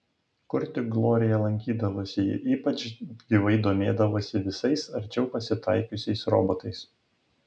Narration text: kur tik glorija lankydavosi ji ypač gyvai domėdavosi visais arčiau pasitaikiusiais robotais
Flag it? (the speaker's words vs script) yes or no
no